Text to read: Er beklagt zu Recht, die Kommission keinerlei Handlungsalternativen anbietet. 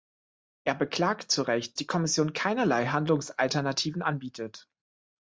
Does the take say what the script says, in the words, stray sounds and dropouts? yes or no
yes